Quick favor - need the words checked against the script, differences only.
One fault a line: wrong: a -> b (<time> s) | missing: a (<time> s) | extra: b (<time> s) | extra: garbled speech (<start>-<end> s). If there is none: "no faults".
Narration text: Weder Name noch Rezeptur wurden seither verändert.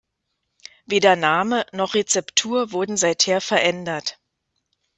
no faults